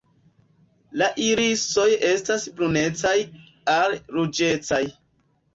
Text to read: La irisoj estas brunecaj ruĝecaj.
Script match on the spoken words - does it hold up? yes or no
no